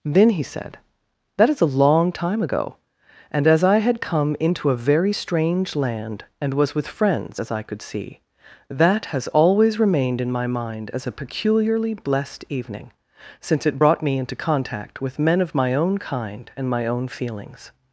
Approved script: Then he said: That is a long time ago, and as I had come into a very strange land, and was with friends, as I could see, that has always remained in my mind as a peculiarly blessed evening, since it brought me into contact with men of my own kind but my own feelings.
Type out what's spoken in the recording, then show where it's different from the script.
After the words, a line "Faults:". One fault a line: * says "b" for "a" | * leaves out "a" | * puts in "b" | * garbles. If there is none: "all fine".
Then he said: That is a long time ago, and as I had come into a very strange land, and was with friends, as I could see, that has always remained in my mind as a peculiarly blessed evening, since it brought me into contact with men of my own kind and my own feelings.
Faults:
* says "and" for "but"